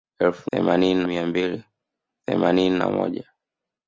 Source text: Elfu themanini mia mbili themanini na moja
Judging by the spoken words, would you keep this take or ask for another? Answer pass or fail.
pass